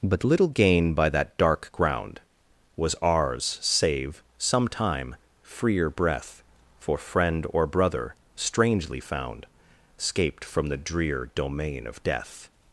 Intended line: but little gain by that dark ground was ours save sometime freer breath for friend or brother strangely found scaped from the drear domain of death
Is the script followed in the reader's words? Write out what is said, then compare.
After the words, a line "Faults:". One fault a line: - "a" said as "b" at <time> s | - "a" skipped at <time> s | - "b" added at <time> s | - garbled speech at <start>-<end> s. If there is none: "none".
but little gain by that dark ground was ours save sometime freer breath for friend or brother strangely found scaped from the drear domain of death
Faults:
none